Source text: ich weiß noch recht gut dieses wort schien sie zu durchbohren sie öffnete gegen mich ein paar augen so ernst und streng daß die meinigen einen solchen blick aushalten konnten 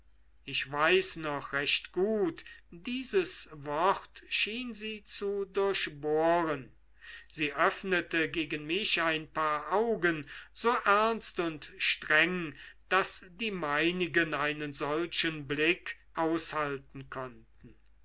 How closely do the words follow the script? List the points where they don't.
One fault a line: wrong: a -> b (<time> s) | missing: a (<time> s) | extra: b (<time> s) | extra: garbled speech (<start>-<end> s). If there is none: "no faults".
no faults